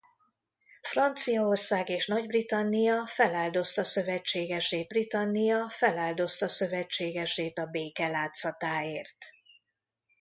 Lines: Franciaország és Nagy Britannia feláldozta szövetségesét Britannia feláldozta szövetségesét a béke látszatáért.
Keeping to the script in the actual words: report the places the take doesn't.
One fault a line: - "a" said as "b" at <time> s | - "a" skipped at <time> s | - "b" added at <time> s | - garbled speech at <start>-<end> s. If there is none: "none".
none